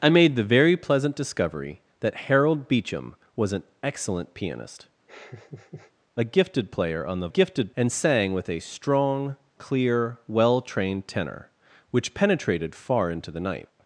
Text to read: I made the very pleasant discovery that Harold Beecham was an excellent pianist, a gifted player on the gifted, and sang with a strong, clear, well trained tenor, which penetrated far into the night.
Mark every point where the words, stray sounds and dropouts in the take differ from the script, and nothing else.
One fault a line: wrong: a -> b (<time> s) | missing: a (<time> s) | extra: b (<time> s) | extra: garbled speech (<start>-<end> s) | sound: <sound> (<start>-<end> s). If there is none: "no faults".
sound: laugh (5.1-5.9 s)